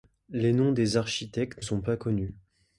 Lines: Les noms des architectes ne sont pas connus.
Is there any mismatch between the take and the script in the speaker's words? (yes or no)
yes